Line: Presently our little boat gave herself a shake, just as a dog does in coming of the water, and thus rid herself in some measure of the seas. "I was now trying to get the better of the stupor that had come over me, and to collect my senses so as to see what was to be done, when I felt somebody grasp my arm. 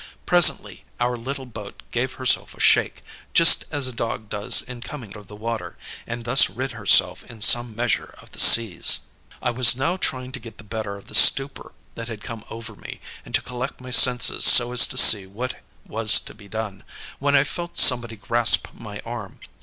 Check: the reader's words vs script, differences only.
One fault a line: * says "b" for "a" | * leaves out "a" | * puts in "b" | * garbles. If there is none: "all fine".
all fine